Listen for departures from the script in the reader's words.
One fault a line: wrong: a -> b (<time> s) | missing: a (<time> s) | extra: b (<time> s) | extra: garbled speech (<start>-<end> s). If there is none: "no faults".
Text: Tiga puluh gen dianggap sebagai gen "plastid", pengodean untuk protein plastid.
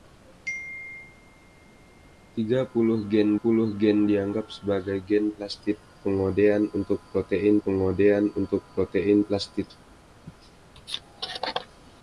extra: puluh gen (3.3 s)
extra: pengodean untuk protein (7.7 s)